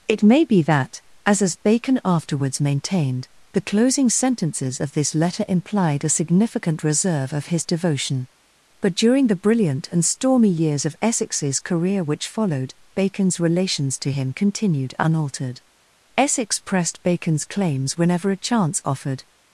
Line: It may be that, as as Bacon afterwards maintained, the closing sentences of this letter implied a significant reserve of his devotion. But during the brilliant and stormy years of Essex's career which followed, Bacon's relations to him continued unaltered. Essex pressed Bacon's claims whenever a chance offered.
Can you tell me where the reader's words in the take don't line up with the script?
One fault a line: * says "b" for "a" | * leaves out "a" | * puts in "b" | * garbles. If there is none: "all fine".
all fine